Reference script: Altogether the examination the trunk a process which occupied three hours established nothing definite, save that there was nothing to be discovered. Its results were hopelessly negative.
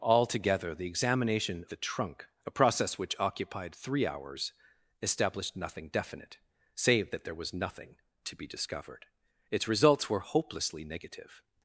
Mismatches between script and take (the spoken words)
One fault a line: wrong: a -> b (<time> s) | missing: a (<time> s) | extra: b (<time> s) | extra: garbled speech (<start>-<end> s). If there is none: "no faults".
no faults